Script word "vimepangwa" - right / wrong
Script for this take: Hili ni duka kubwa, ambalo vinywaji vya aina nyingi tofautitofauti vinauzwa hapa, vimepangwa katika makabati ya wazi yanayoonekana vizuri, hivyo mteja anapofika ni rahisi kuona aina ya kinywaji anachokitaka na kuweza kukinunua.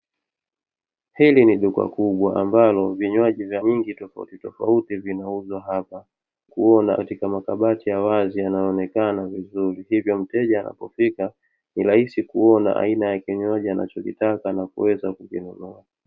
wrong